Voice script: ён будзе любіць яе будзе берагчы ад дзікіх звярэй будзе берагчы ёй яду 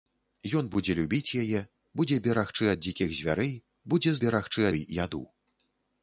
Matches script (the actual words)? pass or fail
pass